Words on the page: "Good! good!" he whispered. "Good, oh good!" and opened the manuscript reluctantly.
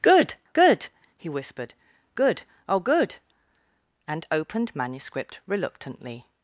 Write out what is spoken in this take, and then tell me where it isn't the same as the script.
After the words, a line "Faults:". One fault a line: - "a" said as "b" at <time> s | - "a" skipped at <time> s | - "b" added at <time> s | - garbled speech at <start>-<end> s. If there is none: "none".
"Good! good!" he whispered. "Good, oh good!" and opened manuscript reluctantly.
Faults:
- "the" skipped at 4.7 s